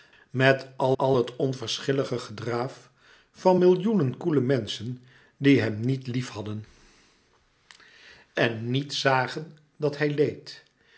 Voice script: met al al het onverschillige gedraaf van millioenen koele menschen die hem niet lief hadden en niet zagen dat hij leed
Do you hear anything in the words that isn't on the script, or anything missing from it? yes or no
no